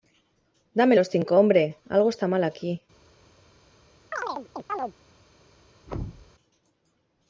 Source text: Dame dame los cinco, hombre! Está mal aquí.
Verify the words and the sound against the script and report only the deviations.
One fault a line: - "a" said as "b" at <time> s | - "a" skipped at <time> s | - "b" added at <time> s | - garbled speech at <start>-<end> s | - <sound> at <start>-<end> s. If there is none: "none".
- "dame" skipped at 0.9 s
- "Algo" added at 1.9 s
- chirp at 4.1-4.9 s
- thud at 5.9-6.3 s